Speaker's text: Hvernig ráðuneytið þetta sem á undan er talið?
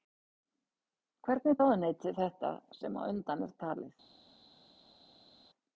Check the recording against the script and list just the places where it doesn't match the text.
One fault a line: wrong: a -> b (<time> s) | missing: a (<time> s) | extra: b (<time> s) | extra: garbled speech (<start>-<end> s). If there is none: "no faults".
no faults